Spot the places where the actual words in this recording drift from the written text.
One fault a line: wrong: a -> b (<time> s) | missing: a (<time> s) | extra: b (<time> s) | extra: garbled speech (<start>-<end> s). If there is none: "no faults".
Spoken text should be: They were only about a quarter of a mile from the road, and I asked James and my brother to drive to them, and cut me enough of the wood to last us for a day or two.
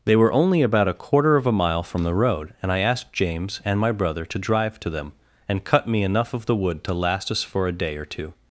no faults